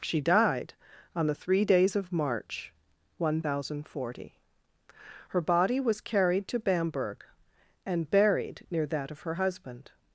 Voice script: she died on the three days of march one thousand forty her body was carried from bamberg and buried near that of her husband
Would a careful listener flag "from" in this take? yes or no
yes